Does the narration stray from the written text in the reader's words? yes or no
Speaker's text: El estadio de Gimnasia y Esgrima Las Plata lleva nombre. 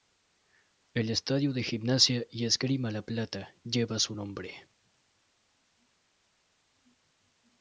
yes